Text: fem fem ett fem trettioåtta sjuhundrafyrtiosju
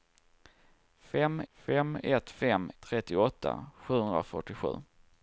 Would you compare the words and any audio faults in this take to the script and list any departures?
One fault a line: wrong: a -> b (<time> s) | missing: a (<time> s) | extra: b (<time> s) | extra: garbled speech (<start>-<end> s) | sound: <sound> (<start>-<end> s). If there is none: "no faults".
no faults